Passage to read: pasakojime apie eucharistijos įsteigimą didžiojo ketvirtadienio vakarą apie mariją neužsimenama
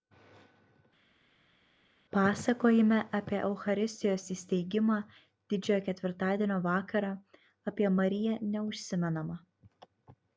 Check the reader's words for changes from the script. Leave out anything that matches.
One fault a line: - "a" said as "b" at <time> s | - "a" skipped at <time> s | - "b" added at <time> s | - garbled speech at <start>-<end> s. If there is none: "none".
none